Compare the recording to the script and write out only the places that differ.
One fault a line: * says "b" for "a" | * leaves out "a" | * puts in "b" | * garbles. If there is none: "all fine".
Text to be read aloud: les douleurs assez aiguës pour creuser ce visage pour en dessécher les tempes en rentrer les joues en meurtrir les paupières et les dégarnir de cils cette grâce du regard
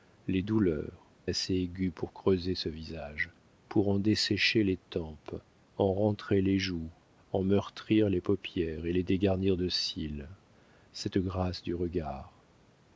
all fine